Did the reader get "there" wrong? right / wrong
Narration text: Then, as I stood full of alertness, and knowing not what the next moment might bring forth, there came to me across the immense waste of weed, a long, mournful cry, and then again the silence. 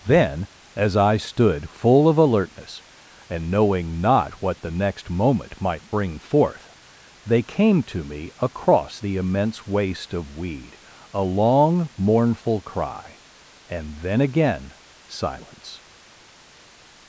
wrong